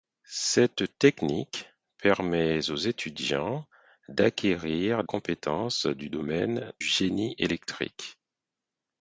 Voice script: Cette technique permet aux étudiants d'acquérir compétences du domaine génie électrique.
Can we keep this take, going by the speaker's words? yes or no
yes